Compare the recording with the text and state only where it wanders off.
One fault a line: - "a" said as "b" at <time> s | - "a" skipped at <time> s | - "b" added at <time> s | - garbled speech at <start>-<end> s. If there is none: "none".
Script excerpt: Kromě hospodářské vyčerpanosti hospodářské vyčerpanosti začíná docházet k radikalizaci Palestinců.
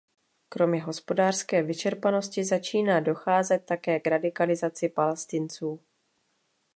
- "hospodářské vyčerpanosti" skipped at 2.4 s
- "také" added at 3.7 s